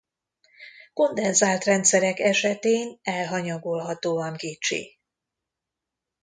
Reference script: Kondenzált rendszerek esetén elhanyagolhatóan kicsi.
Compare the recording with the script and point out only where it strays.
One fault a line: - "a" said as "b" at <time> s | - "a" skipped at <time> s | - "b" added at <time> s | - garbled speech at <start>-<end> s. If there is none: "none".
none